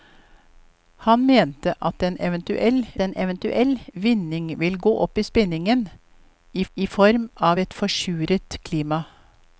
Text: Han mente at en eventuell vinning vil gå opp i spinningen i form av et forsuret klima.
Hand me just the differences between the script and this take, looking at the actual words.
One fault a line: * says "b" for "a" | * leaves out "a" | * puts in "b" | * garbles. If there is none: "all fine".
* puts in "en eventuell"
* puts in "i"